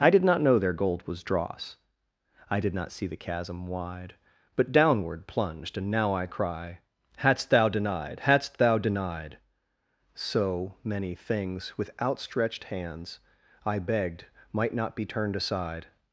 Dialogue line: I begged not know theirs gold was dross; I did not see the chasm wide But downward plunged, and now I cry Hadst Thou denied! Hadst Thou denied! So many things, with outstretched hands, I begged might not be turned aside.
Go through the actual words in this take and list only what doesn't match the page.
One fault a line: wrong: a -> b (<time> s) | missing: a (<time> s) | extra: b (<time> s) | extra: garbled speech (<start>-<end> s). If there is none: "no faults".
wrong: begged -> did (0.1 s)
wrong: theirs -> their (0.6 s)